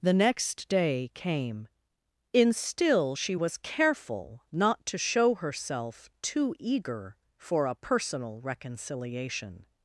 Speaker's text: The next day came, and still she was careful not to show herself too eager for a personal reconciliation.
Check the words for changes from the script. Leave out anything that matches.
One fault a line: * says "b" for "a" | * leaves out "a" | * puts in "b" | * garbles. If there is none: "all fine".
* says "in" for "and"